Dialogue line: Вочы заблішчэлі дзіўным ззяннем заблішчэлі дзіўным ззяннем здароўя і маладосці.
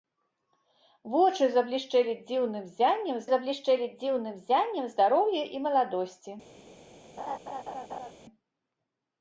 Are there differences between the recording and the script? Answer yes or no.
no